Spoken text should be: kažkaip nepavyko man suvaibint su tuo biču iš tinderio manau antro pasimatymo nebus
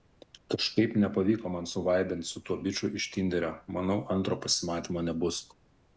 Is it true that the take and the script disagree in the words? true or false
false